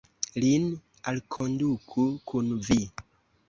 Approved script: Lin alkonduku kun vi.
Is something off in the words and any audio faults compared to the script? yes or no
yes